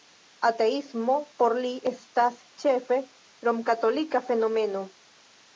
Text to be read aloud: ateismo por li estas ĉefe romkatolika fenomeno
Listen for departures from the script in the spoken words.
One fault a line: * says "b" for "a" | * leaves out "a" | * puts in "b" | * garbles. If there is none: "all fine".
all fine